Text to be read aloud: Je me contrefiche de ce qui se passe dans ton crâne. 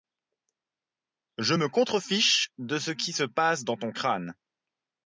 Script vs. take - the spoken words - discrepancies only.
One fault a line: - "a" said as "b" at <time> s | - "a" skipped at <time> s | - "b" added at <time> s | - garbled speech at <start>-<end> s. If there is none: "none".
none